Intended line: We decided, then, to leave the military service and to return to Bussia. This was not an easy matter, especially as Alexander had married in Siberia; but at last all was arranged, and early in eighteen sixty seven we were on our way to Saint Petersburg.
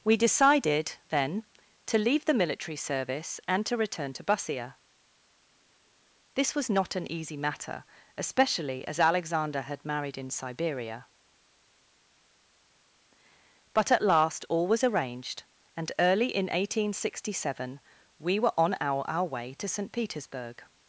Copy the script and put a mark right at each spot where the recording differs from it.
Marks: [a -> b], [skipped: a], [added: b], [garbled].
We decided, then, to leave the military service and to return to Bussia. This was not an easy matter, especially as Alexander had married in Siberia; but at last all was arranged, and early in eighteen sixty seven we were on our [added: our] way to Saint Petersburg.